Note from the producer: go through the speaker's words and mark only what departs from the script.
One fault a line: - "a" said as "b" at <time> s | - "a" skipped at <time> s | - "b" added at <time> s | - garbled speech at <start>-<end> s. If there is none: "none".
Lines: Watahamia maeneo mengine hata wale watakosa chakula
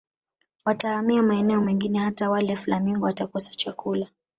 - "flamingo" added at 2.6 s